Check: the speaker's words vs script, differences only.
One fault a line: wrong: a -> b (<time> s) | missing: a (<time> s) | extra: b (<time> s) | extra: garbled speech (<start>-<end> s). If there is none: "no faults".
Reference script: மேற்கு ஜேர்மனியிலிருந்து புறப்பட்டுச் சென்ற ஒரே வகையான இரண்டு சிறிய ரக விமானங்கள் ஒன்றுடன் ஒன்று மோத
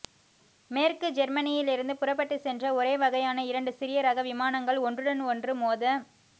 no faults